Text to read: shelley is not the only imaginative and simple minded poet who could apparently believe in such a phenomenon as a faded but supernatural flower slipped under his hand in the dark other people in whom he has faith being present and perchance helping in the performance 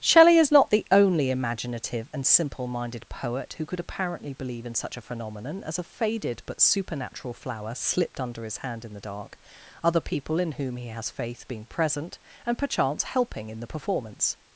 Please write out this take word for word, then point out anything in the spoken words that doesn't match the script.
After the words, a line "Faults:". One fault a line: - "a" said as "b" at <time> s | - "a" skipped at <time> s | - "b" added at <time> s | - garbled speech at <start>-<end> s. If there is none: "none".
shelley is not the only imaginative and simple minded poet who could apparently believe in such a phenomenon as a faded but supernatural flower slipped under his hand in the dark other people in whom he has faith being present and perchance helping in the performance
Faults:
none